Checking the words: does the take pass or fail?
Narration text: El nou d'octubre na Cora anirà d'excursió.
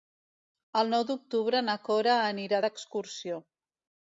pass